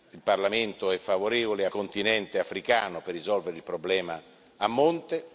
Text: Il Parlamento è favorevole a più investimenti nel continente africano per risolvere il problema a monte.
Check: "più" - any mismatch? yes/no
yes